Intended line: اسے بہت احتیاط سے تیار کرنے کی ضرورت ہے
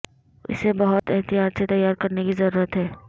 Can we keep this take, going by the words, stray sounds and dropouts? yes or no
no